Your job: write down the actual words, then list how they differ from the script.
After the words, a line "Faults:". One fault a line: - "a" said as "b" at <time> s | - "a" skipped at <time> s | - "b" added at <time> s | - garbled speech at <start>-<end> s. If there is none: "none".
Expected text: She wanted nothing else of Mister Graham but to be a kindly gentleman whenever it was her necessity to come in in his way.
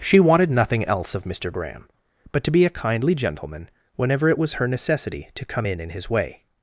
She wanted nothing else of Mister Graham but to be a kindly gentleman whenever it was her necessity to come in in his way.
Faults:
none